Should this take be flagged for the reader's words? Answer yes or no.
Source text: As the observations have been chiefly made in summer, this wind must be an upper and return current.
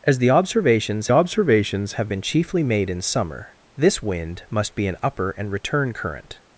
yes